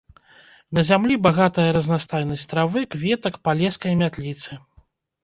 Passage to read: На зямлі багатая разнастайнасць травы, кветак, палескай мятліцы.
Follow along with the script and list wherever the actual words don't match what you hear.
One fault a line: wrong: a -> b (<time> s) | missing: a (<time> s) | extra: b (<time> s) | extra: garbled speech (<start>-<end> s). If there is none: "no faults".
no faults